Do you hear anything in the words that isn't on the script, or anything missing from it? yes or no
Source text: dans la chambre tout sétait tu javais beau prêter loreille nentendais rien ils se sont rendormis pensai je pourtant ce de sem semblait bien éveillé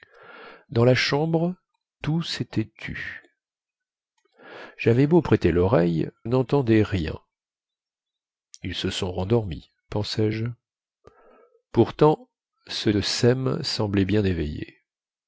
no